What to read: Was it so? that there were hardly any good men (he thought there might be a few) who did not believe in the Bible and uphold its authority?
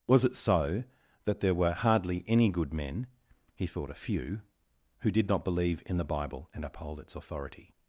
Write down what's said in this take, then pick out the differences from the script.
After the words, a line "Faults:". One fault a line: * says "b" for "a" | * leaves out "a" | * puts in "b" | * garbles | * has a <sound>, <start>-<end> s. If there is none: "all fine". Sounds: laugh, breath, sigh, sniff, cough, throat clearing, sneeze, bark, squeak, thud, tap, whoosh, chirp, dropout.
Was it so? that there were hardly any good men (he thought a few) who did not believe in the Bible and uphold its authority?
Faults:
* leaves out "there might be"